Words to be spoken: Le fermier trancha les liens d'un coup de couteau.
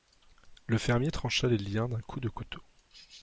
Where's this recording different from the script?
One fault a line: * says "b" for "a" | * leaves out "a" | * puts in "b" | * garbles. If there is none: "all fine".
all fine